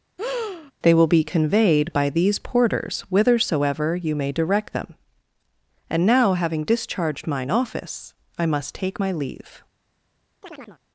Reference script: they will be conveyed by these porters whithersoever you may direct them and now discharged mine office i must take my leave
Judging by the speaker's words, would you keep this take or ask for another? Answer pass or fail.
fail